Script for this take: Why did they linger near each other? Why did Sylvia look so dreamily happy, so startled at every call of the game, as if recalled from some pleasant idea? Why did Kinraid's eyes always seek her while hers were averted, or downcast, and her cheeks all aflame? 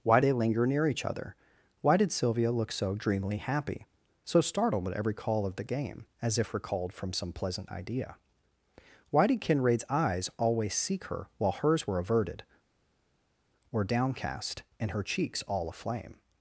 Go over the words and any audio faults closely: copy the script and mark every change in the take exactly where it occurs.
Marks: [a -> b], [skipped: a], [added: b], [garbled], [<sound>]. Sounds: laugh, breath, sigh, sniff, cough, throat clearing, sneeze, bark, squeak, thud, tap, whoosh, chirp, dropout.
Why [skipped: did] they linger near each other? Why did Sylvia look so dreamily happy, so startled at every call of the game, as if recalled from some pleasant idea? Why did Kinraid's eyes always seek her while hers were averted, or downcast, and her cheeks all aflame?